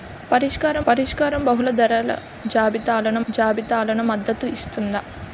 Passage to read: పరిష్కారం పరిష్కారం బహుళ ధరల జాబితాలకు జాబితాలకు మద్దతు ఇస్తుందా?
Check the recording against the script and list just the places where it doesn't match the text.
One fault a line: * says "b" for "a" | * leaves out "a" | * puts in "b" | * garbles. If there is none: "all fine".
all fine